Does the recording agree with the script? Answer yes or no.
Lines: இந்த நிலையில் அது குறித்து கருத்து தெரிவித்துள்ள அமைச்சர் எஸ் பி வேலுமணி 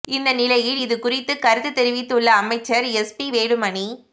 no